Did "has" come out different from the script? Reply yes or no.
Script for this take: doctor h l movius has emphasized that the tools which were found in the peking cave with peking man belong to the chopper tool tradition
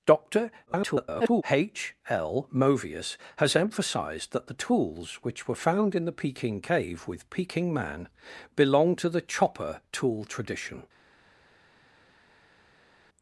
no